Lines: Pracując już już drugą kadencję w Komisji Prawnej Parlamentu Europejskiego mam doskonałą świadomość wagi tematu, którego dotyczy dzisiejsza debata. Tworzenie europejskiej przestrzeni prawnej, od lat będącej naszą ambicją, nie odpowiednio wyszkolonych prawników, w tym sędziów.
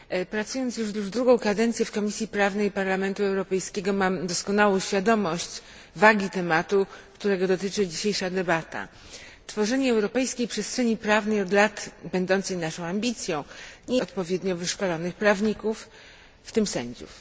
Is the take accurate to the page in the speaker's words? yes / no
yes